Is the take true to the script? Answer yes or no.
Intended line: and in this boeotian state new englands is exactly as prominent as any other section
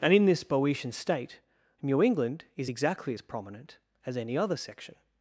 no